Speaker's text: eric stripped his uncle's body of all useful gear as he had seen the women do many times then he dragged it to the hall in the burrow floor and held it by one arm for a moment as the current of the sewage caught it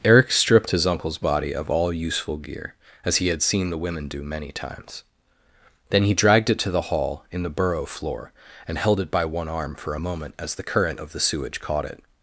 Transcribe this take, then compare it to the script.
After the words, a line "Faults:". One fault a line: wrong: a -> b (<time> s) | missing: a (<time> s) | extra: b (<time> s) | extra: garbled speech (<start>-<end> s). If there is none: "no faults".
eric stripped his uncle's body of all useful gear as he had seen the women do many times then he dragged it to the hall in the burrow floor and held it by one arm for a moment as the current of the sewage caught it
Faults:
no faults